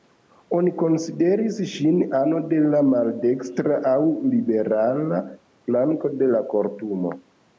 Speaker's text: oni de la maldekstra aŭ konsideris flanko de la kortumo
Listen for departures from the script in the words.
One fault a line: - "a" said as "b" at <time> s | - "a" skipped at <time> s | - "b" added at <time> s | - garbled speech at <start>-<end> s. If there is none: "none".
- "konsideris ŝin ano" added at 0.8 s
- "konsideris" said as "liberala" at 4.3 s